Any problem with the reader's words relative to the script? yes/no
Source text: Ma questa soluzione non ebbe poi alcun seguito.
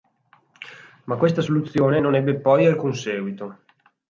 no